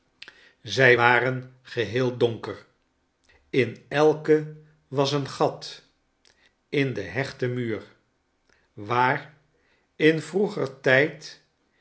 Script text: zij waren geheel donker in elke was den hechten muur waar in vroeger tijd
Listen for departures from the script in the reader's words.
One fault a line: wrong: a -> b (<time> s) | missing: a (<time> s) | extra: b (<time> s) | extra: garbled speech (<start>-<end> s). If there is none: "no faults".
extra: een gat in (5.1 s)